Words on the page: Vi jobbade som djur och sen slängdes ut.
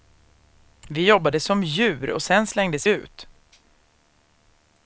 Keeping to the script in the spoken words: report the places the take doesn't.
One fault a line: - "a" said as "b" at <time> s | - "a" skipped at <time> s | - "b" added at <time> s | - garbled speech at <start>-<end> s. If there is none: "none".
none